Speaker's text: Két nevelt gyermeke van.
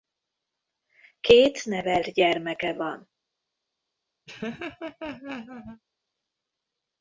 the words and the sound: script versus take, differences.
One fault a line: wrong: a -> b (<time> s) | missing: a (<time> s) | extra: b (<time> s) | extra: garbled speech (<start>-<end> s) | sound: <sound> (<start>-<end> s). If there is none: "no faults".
sound: laugh (4.3-5.8 s)